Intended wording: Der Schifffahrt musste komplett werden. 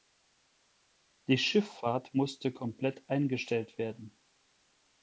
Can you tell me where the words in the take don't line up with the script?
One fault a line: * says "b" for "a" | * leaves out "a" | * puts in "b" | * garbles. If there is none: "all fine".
* says "Die" for "Der"
* puts in "eingestellt"